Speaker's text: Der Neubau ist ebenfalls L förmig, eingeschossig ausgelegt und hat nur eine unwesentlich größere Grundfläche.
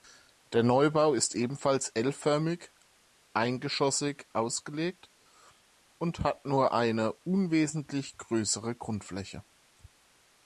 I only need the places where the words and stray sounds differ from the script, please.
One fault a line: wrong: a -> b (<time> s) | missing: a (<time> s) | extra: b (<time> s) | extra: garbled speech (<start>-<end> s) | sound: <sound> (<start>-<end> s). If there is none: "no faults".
no faults